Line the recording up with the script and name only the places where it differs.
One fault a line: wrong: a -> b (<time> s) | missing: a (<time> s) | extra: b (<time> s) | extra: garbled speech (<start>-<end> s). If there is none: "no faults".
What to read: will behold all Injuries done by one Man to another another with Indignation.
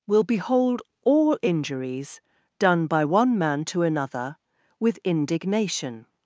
missing: another (4.4 s)